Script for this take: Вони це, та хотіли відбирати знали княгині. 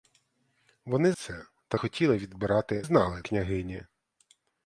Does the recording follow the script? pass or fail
pass